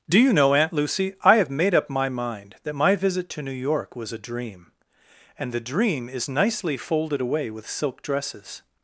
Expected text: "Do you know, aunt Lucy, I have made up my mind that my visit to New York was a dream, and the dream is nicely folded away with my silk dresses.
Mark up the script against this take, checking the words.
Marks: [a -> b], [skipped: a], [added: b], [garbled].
"Do you know, aunt Lucy, I have made up my mind that my visit to New York was a dream, and the dream is nicely folded away with [skipped: my] silk dresses.